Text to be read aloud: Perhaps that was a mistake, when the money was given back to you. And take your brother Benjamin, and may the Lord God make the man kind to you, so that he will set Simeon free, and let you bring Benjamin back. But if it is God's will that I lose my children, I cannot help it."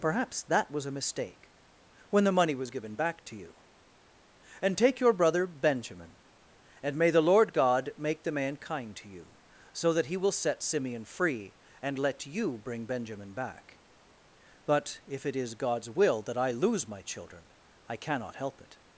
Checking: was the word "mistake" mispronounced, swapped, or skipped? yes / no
no